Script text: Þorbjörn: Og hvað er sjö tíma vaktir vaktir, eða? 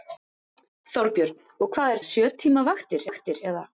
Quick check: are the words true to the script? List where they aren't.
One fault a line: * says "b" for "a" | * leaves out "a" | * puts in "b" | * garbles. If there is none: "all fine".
all fine